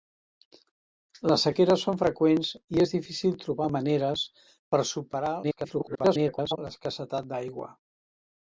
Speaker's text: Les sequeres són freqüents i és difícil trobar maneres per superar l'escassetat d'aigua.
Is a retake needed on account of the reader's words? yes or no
yes